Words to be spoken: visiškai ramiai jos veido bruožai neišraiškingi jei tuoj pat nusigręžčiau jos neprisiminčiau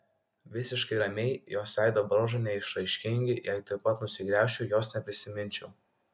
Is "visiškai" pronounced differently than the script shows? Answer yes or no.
no